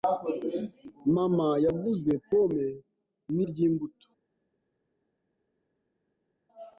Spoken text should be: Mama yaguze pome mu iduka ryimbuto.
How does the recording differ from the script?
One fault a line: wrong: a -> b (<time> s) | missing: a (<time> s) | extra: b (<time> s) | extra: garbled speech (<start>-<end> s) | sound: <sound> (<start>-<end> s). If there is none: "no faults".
missing: iduka (3.4 s)